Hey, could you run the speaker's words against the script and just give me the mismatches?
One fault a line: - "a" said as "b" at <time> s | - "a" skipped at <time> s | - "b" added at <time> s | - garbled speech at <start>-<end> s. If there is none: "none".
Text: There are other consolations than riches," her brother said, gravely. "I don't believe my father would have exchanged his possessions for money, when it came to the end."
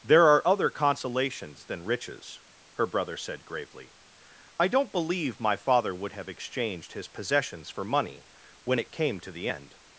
none